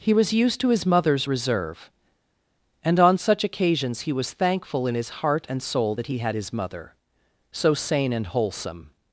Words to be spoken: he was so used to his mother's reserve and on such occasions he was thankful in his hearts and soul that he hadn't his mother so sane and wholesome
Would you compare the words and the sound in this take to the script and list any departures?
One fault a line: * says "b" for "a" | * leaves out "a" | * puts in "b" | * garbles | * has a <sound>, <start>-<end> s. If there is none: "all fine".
* leaves out "so"
* says "heart" for "hearts"
* says "had" for "hadn't"